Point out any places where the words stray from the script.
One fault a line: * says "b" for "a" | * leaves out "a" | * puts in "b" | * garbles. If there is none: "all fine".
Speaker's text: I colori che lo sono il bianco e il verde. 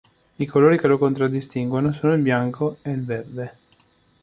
* puts in "contraddistinguono"